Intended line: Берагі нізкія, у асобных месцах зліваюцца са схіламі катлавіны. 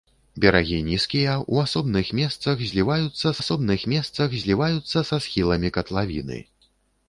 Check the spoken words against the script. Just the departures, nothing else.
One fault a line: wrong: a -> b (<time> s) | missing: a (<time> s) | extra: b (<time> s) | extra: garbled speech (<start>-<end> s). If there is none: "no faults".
extra: асобных месцах зліваюцца (3.4 s)